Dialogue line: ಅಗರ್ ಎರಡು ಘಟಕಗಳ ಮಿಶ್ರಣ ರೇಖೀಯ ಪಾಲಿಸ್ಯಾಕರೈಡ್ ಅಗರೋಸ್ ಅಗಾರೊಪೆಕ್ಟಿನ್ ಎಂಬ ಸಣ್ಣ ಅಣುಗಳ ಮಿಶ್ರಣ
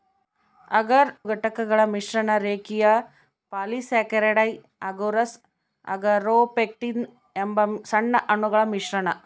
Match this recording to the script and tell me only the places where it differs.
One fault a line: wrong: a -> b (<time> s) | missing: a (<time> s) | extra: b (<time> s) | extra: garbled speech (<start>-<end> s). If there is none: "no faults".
missing: ಎರಡು (1.1 s)